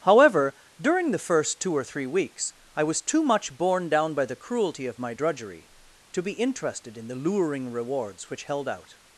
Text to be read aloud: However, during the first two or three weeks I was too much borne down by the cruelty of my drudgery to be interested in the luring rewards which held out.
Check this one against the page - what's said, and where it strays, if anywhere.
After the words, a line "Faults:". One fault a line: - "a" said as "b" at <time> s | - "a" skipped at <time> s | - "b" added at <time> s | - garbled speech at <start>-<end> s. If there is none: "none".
However, during the first two or three weeks I was too much borne down by the cruelty of my drudgery to be interested in the luring rewards which held out.
Faults:
none